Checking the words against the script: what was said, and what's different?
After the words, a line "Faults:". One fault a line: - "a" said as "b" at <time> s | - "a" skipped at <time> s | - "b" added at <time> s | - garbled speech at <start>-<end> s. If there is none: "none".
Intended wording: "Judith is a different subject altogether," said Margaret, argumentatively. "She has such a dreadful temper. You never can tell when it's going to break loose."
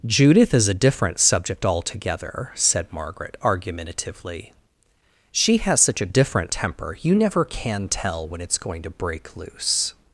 "Judith is a different subject altogether," said Margaret, argumentatively. "She has such a different temper. You never can tell when it's going to break loose."
Faults:
- "dreadful" said as "different" at 6.1 s